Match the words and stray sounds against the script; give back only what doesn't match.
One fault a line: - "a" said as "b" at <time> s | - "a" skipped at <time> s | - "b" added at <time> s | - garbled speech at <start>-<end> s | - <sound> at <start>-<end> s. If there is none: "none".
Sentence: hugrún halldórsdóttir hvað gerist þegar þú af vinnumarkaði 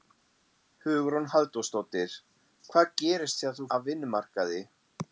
none